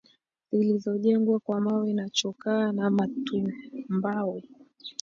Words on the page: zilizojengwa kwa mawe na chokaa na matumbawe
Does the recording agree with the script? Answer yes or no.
yes